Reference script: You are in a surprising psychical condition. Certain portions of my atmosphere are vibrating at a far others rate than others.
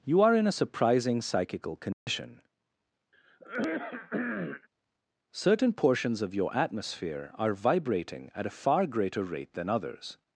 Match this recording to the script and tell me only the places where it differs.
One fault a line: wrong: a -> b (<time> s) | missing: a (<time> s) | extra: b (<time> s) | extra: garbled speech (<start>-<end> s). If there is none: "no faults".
wrong: my -> your (6.3 s)
wrong: others -> greater (8.9 s)